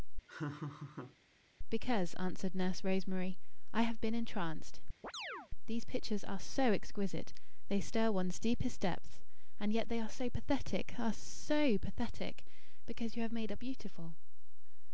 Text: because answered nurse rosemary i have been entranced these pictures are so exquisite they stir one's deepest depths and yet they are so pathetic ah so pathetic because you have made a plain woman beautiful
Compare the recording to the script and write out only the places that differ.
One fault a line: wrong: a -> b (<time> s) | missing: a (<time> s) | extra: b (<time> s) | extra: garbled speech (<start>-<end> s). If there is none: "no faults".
missing: plain woman (13.6 s)